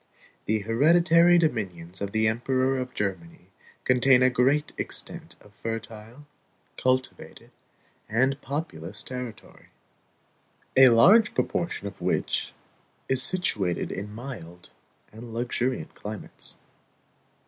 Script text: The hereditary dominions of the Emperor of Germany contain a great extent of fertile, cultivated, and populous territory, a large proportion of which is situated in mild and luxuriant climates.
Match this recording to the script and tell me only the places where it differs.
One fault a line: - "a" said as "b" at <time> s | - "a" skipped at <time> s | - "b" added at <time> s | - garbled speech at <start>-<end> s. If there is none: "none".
none